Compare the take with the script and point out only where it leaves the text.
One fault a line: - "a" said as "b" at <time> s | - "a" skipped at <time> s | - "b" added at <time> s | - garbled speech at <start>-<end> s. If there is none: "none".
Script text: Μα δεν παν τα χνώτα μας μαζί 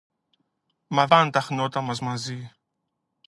- "δεν" skipped at 1.1 s